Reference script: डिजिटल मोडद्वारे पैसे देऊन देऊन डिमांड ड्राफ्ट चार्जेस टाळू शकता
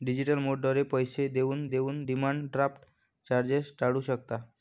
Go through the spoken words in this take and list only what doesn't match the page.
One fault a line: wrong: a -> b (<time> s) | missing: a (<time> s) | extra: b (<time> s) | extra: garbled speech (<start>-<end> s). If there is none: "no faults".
no faults